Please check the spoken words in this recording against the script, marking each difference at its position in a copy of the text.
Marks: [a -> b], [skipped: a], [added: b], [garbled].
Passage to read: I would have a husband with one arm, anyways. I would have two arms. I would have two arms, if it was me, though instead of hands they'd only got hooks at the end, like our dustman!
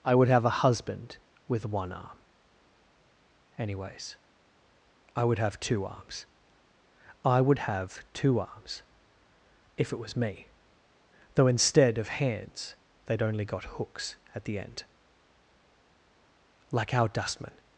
I would have a husband with one arm, anyways. I would have two arms. I would have two arms, if it was me, though instead of hands they'd only got hooks at the end, like our dustman!